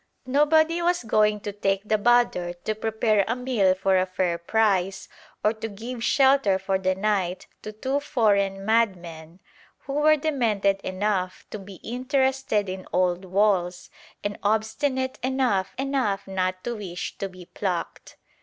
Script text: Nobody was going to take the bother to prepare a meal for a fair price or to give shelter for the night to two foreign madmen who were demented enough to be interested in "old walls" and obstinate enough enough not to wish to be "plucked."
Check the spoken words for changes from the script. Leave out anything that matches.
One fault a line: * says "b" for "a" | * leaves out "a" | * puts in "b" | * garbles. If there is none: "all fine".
all fine